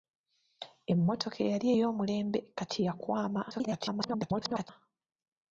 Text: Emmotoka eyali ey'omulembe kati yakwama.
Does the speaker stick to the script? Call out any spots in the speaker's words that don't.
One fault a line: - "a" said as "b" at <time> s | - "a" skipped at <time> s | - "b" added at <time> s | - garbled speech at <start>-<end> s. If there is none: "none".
- garbled speech at 3.5-4.7 s